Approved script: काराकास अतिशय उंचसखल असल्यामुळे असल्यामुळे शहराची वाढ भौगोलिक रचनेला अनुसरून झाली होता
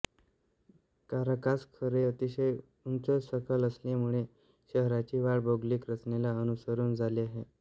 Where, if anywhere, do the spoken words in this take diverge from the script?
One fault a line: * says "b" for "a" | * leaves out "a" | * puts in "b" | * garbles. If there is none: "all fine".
* puts in "खोरे"
* leaves out "असल्यामुळे"
* says "आहे" for "होता"